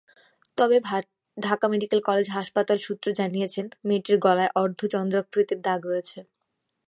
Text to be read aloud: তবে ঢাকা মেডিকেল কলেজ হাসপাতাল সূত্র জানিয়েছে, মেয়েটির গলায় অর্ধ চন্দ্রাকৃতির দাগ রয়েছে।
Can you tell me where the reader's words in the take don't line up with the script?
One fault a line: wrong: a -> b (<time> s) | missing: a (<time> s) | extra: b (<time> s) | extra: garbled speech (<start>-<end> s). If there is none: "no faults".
no faults